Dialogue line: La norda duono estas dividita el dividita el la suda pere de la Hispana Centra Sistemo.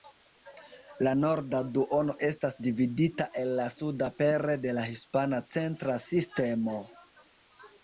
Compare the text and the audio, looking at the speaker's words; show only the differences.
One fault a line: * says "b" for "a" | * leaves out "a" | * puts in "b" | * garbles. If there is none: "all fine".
* leaves out "dividita el"